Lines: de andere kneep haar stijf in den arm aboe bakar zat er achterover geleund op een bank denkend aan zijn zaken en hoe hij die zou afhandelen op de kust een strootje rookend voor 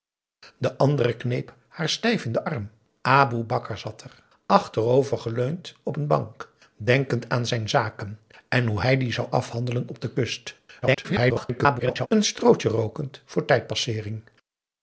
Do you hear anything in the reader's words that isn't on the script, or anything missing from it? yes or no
yes